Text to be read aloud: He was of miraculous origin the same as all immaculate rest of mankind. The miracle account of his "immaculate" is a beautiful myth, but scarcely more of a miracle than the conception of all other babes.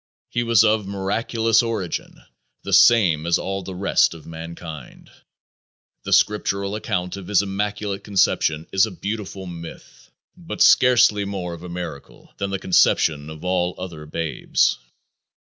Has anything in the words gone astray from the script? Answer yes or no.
yes